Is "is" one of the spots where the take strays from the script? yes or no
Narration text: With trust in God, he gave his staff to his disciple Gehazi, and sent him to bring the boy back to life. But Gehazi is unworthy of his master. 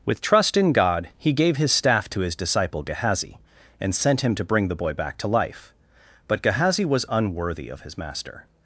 yes